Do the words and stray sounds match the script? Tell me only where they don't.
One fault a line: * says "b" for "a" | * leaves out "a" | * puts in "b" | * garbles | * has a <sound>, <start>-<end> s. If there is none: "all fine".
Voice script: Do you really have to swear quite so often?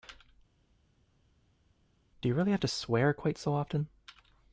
all fine